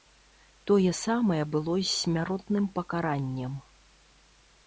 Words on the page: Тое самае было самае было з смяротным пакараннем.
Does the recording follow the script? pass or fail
fail